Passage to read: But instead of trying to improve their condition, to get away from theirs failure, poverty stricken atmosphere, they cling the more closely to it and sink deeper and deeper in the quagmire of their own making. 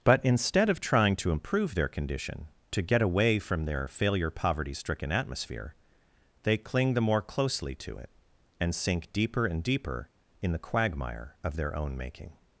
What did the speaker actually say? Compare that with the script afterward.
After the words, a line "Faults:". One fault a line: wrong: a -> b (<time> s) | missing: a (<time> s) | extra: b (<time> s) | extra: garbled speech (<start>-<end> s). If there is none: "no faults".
But instead of trying to improve their condition, to get away from their failure, poverty stricken atmosphere, they cling the more closely to it and sink deeper and deeper in the quagmire of their own making.
Faults:
wrong: theirs -> their (3.6 s)